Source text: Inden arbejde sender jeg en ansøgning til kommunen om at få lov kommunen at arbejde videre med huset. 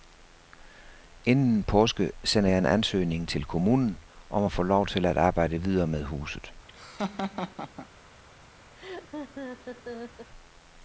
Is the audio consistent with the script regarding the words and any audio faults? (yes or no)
no